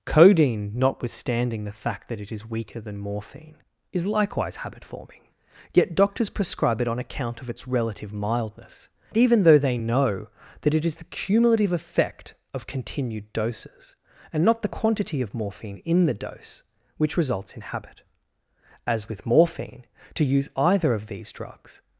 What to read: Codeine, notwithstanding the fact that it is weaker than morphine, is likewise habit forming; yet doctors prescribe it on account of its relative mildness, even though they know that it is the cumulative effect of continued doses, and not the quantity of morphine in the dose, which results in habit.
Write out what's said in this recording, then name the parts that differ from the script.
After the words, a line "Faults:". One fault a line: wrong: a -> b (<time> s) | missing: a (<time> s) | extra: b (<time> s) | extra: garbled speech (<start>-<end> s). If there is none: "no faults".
Codeine, notwithstanding the fact that it is weaker than morphine, is likewise habit forming; yet doctors prescribe it on account of its relative mildness, even though they know that it is the cumulative effect of continued doses, and not the quantity of morphine in the dose, which results in habit. As with morphine, to use either of these drugs
Faults:
extra: As with morphine to use either of these drugs (18.9 s)